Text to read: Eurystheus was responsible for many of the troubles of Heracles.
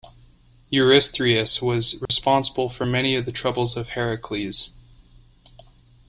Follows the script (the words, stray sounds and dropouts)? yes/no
no